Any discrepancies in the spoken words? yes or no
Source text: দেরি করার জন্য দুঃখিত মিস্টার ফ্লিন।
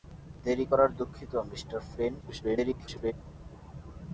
yes